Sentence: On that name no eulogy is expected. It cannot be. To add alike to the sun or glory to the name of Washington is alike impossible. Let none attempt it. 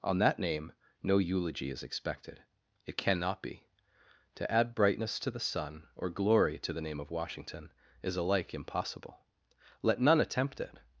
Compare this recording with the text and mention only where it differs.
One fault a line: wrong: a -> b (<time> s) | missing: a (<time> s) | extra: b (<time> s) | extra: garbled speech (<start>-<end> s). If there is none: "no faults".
wrong: alike -> brightness (4.8 s)